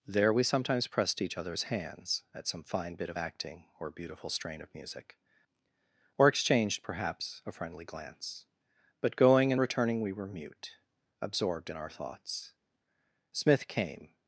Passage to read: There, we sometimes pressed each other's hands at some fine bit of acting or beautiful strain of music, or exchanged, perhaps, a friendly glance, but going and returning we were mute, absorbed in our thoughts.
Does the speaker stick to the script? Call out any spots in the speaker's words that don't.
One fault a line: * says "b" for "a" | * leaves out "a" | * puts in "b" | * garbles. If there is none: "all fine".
* puts in "Smith came"